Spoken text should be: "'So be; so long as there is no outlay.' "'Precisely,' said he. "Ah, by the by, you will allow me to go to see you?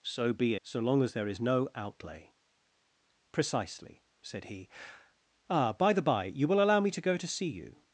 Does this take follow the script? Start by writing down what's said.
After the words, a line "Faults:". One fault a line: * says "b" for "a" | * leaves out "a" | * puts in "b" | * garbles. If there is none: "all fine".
"'So be; so long as there is no outlay.' "'Precisely,' said he. "Ah, by the by, you will allow me to go to see you?
Faults:
all fine